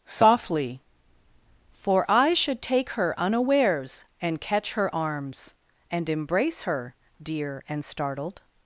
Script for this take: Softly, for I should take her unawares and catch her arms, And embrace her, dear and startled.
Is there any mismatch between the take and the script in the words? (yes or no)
no